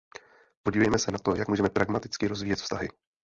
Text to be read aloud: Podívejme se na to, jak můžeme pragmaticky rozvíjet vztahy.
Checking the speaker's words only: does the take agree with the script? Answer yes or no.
yes